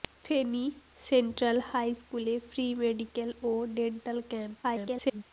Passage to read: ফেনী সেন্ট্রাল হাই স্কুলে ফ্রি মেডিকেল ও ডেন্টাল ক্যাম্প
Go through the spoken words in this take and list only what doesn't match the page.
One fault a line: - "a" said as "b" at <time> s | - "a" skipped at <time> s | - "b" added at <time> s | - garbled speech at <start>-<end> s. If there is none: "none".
- garbled speech at 4.6-5.2 s